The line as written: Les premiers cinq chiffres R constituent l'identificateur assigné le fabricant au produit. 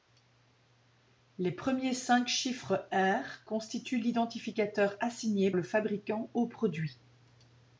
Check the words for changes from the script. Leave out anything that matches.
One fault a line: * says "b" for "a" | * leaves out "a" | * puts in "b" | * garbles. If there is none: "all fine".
all fine